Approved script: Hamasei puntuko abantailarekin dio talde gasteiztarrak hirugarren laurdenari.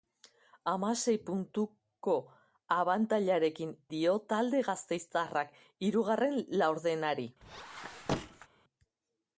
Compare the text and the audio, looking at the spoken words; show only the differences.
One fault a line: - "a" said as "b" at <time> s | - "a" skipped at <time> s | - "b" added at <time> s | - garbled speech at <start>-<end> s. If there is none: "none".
none